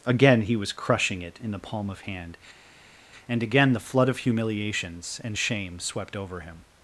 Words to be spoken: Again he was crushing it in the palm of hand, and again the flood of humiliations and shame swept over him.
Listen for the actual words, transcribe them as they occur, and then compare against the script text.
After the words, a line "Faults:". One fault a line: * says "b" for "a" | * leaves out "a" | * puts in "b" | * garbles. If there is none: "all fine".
Again he was crushing it in the palm of hand, and again the flood of humiliations and shame swept over him.
Faults:
all fine